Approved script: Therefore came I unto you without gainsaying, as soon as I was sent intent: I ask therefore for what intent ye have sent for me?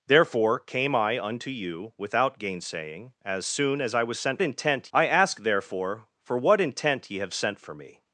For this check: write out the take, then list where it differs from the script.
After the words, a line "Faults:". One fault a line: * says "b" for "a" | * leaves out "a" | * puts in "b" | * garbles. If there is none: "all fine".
Therefore came I unto you without gainsaying, as soon as I was sent intent: I ask therefore for what intent ye have sent for me?
Faults:
all fine